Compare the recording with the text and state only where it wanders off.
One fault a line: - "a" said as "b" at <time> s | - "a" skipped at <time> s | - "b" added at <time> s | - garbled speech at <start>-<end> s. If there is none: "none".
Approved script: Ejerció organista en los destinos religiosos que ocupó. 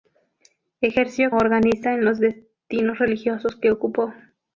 none